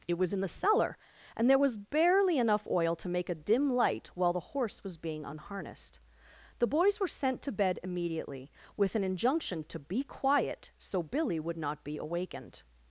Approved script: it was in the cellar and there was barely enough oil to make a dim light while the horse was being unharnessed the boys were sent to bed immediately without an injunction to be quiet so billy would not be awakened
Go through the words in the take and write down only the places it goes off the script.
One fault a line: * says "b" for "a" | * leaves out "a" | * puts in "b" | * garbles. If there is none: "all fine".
* says "with" for "without"